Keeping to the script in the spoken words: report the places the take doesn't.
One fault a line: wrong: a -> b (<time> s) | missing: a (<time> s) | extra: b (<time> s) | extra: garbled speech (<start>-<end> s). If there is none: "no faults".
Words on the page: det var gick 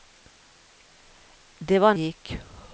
no faults